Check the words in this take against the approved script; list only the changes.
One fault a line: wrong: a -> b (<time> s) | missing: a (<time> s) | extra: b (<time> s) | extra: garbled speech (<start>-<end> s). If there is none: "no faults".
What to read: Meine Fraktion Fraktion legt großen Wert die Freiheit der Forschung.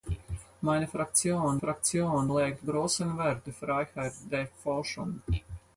no faults